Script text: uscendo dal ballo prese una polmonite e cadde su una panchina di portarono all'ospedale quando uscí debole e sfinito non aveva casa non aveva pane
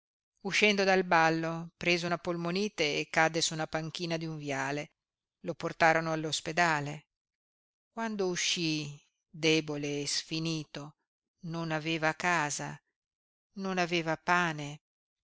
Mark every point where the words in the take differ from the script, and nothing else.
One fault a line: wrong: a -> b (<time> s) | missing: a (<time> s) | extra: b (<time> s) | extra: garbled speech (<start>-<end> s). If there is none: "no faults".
extra: un viale lo (4.3 s)